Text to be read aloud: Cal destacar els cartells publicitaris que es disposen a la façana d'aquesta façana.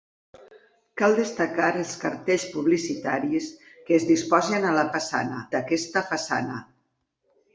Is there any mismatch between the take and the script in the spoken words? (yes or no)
no